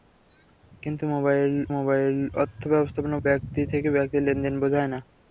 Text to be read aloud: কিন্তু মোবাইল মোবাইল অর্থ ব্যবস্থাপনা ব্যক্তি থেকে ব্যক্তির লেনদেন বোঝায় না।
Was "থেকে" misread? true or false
false